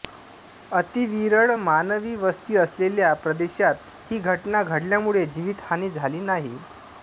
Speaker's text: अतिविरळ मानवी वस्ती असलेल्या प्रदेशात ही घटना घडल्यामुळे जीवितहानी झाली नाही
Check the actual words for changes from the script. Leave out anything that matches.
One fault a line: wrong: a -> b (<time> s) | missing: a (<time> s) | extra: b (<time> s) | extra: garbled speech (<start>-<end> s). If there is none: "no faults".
no faults